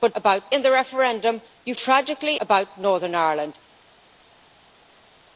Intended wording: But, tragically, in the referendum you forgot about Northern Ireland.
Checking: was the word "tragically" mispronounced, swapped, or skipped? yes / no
yes